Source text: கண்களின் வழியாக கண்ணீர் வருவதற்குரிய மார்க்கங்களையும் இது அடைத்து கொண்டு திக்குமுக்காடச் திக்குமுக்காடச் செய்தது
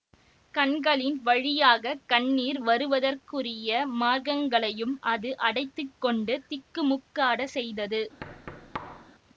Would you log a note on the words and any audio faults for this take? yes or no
yes